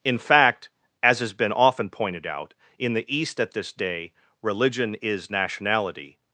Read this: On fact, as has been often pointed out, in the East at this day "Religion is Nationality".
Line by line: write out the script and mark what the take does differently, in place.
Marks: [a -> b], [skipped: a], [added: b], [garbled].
[On -> In] fact, as has been often pointed out, in the East at this day "Religion is Nationality".